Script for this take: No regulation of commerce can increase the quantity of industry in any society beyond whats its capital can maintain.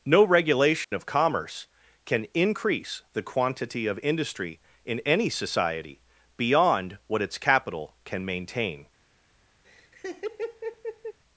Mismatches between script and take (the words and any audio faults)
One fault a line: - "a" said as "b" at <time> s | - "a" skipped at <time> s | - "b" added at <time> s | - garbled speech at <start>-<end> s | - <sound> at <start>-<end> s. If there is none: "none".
- dropout at 0.8-0.9 s
- "whats" said as "what" at 7.1 s
- laugh at 9.6-11.2 s